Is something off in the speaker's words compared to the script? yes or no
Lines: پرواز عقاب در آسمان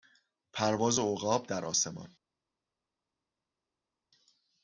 no